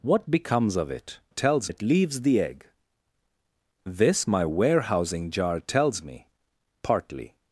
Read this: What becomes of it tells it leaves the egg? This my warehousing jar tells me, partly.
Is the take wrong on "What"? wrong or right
right